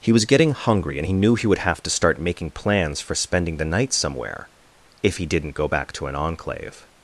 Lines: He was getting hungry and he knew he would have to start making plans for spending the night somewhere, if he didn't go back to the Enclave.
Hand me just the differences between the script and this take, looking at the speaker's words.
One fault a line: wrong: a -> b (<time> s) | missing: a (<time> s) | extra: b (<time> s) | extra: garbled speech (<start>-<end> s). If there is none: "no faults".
wrong: the -> an (6.1 s)